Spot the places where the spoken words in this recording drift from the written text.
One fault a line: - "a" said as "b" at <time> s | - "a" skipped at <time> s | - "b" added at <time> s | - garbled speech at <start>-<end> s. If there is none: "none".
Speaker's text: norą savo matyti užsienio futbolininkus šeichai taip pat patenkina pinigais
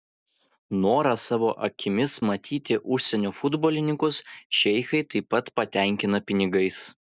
- "akimis" added at 1.7 s